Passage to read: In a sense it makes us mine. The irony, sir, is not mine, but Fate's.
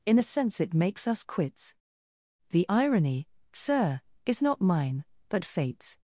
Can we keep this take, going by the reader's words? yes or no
no